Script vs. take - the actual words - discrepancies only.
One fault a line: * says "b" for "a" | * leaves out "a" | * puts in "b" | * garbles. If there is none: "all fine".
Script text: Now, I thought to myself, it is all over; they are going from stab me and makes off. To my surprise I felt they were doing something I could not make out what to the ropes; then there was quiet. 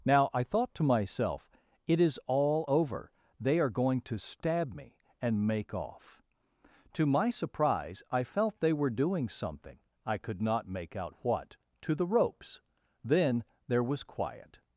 * says "to" for "from"
* says "make" for "makes"